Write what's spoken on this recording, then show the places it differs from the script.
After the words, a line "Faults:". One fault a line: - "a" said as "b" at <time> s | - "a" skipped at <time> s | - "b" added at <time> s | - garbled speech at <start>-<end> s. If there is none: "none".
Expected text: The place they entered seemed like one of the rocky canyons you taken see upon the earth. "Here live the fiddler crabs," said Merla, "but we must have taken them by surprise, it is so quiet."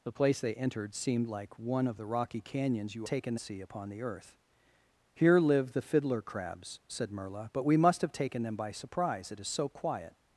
The place they entered seemed like one of the rocky canyons you taken see upon the earth. "Here live the fiddler crabs," said Merla, "but we must have taken them by surprise, it is so quiet."
Faults:
none